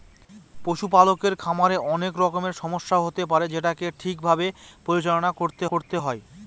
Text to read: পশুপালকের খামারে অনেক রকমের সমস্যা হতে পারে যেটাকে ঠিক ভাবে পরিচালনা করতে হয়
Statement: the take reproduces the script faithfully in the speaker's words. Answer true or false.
false